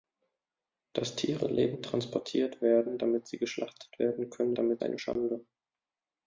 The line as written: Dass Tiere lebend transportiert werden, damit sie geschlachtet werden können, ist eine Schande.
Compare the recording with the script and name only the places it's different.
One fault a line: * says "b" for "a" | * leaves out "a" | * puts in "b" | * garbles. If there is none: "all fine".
* says "damit" for "ist"